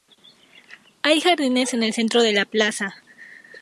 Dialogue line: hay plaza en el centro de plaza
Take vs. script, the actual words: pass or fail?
fail